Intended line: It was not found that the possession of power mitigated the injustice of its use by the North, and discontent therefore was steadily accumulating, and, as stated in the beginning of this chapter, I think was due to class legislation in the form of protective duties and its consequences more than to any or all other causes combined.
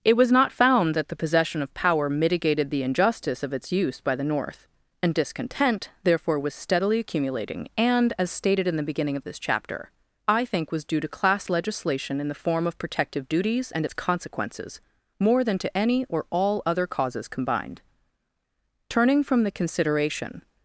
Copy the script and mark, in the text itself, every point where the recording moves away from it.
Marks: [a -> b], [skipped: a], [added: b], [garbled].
It was not found that the possession of power mitigated the injustice of its use by the North, and discontent therefore was steadily accumulating, and, as stated in the beginning of this chapter, I think was due to class legislation in the form of protective duties and its consequences more than to any or all other causes combined. [added: Turning from the consideration]